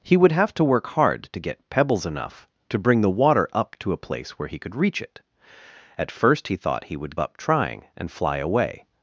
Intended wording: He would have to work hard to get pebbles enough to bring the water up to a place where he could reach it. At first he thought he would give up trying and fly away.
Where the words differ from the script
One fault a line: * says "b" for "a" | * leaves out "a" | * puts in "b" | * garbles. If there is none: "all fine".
* leaves out "give"